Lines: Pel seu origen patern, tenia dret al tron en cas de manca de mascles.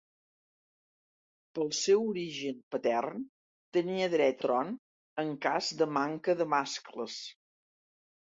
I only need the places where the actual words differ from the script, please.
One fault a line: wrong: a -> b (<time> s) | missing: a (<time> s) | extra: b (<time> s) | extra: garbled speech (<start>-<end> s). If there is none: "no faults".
missing: al (4.4 s)